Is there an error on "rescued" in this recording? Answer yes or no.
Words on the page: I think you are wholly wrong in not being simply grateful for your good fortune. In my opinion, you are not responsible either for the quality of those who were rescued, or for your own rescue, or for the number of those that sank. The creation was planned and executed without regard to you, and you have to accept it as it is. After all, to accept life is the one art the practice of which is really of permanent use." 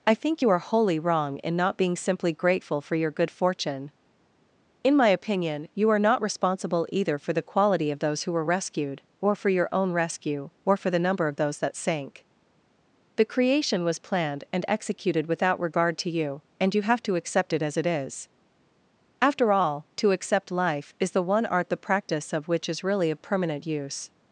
no